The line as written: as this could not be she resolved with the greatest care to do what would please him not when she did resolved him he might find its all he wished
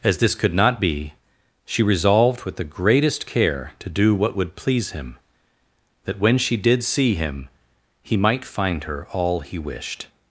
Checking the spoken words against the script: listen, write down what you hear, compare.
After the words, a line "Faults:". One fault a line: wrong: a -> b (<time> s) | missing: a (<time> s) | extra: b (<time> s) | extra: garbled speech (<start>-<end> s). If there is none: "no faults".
as this could not be she resolved with the greatest care to do what would please him that when she did see him he might find her all he wished
Faults:
wrong: not -> that (6.0 s)
wrong: resolved -> see (6.8 s)
wrong: its -> her (8.8 s)